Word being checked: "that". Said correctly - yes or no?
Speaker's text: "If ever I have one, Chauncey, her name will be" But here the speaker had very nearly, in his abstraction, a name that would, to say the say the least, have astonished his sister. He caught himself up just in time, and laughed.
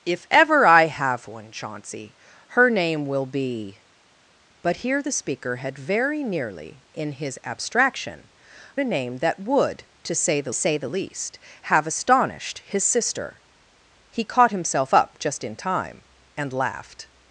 yes